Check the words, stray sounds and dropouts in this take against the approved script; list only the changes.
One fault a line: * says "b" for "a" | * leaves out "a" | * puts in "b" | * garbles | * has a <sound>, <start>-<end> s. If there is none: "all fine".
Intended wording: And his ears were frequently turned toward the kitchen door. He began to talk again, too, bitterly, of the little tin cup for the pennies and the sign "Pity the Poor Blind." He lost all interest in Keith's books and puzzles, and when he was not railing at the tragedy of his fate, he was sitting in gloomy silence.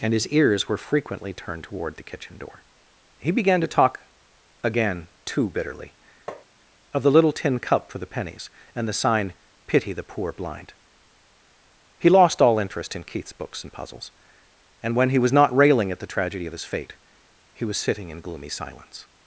* has a tap, 6.3-6.4 s